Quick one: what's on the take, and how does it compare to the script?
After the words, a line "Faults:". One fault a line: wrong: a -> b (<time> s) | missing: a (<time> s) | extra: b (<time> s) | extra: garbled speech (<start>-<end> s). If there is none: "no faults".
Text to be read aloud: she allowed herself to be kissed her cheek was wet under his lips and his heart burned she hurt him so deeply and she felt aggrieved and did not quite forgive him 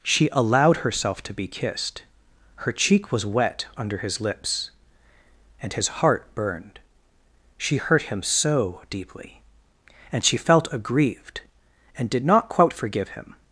she allowed herself to be kissed her cheek was wet under his lips and his heart burned she hurt him so deeply and she felt aggrieved and did not quite forgive him
Faults:
no faults